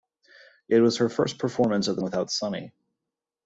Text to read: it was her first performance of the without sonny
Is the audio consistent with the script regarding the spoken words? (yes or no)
yes